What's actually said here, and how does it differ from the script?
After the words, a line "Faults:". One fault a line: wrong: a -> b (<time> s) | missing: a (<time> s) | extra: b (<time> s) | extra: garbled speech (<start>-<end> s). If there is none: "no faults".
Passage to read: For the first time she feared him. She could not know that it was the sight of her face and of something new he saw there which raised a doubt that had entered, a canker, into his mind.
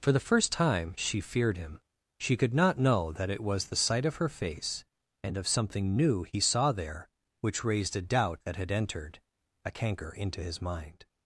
For the first time she feared him. She could not know that it was the sight of her face and of something new he saw there which raised a doubt that had entered, a canker, into his mind.
Faults:
no faults